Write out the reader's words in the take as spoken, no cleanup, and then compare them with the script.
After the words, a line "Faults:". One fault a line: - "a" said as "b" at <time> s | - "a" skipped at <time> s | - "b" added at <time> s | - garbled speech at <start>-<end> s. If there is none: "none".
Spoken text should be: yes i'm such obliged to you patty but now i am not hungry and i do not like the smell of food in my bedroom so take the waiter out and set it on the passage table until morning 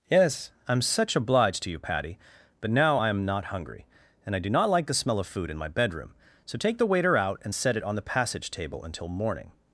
yes i'm such obliged to you patty but now i am not hungry and i do not like the smell of food in my bedroom so take the waiter out and set it on the passage table until morning
Faults:
none